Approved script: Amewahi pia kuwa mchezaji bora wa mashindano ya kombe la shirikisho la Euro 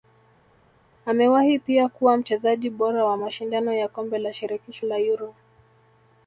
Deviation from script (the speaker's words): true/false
false